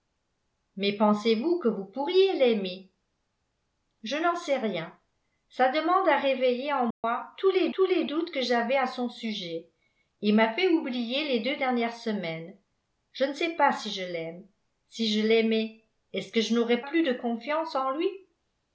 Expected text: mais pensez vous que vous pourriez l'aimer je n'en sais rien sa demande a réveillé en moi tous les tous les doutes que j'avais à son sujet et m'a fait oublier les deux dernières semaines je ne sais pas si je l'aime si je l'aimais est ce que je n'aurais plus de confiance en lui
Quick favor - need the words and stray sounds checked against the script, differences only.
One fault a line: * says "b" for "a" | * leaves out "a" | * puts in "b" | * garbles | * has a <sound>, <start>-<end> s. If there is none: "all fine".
* has a dropout, 6.9-7.0 s